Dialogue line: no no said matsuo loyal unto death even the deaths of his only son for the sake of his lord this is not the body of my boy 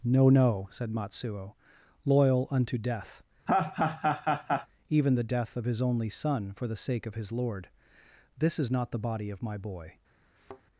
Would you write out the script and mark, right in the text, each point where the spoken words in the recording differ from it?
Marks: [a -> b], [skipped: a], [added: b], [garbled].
no no said matsuo loyal unto death even the [deaths -> death] of his only son for the sake of his lord this is not the body of my boy